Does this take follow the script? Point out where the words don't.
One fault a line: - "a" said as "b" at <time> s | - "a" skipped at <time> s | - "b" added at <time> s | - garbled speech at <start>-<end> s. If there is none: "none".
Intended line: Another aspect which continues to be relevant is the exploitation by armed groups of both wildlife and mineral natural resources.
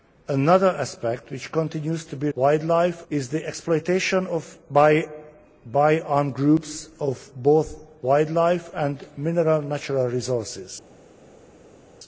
- "relevant" said as "wildlife" at 2.3 s